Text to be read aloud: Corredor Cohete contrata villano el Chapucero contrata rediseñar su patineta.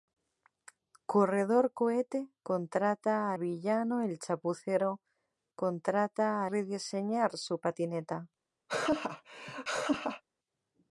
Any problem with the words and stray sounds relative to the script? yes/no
yes